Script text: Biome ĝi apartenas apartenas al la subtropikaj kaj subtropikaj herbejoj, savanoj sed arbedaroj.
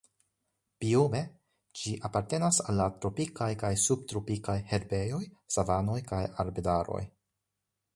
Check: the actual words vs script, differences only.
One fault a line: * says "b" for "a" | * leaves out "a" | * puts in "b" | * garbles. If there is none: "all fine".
* leaves out "apartenas"
* says "tropikaj" for "subtropikaj"
* says "kaj" for "sed"